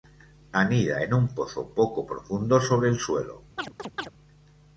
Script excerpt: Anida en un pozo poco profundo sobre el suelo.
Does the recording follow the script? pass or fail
pass